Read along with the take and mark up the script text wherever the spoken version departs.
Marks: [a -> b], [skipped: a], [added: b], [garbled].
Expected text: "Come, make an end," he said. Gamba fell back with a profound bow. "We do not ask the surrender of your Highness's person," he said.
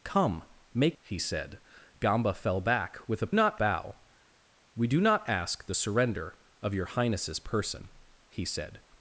"Come, make [skipped: an end,"] he said. Gamba fell back with a [profound -> not] bow. "We do not ask the surrender of your Highness's person," he said.